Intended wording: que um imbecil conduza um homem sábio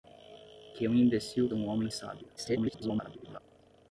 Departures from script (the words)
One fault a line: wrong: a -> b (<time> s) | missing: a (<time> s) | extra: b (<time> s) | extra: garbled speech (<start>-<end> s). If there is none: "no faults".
missing: conduza (1.5 s)
extra: garbled speech (2.4-3.4 s)